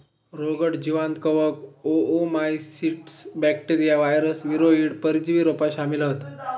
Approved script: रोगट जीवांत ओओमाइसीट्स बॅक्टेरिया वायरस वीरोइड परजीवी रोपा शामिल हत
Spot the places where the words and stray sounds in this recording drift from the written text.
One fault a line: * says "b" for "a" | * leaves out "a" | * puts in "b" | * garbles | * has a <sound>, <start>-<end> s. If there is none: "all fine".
* puts in "कवक"